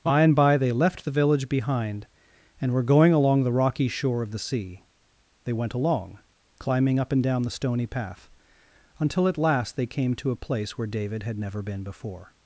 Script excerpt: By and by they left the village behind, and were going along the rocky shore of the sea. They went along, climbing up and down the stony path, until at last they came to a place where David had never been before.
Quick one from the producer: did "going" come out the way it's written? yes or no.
yes